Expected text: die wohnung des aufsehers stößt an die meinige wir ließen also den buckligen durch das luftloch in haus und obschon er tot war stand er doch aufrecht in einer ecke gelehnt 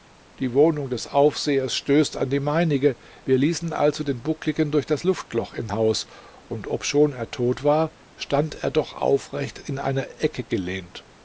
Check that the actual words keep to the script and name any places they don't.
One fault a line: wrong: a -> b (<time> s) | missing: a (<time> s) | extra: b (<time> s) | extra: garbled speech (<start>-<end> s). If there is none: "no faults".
no faults